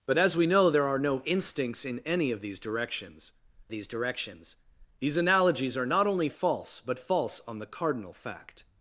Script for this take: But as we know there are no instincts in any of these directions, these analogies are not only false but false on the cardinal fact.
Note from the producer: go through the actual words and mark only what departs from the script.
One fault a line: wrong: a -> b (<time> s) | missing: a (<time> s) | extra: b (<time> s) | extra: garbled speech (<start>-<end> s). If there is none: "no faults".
extra: directions these (3.9 s)